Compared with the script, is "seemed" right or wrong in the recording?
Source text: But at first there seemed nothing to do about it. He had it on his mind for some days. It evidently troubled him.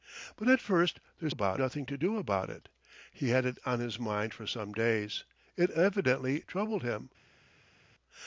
wrong